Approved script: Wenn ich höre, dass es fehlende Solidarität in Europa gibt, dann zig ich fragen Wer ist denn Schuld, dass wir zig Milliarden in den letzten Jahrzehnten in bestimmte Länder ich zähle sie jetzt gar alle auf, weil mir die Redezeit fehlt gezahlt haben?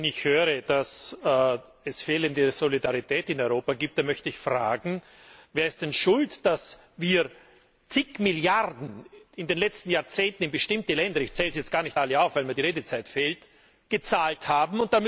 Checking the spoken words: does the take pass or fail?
fail